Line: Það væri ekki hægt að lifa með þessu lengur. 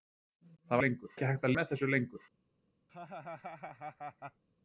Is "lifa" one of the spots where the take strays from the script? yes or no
yes